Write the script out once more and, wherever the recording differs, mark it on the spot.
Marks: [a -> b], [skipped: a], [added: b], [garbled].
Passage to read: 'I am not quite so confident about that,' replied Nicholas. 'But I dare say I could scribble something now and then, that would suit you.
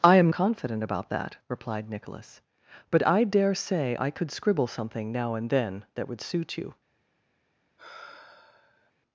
'I am [skipped: not quite so] confident about that,' replied Nicholas. 'But I dare say I could scribble something now and then, that would suit you.